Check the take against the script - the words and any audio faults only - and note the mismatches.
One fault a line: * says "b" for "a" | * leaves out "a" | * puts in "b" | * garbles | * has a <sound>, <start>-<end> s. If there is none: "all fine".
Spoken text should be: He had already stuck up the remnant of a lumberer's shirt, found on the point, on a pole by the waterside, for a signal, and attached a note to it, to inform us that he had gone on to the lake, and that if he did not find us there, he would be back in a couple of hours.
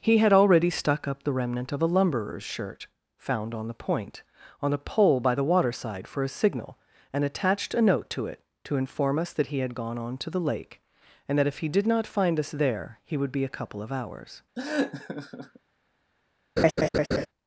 * leaves out "back in"
* has a laugh, 14.5-15.6 s
* has a laugh, 16.6-17.3 s